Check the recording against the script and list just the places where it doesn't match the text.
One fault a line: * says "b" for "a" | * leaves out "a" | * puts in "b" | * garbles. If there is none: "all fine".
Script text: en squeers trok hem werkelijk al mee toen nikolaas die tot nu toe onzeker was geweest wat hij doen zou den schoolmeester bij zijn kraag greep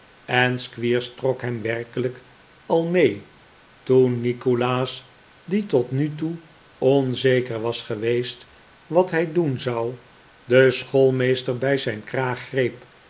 all fine